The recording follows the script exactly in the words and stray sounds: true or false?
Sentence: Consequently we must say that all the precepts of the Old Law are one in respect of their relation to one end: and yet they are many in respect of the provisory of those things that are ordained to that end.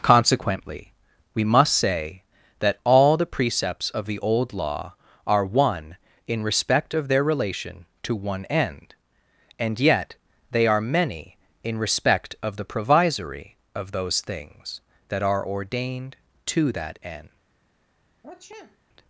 false